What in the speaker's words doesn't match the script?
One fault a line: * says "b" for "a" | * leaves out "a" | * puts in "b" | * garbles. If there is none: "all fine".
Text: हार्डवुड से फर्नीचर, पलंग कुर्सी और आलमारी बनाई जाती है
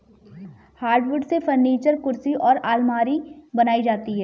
* leaves out "पलंग"